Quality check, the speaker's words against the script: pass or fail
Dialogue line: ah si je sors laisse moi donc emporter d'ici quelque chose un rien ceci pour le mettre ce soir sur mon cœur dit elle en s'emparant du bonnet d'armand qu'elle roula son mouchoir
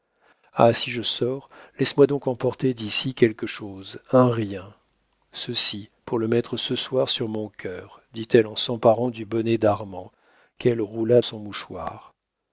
pass